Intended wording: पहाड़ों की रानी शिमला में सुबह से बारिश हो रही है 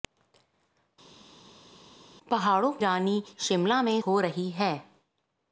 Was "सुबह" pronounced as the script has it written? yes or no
no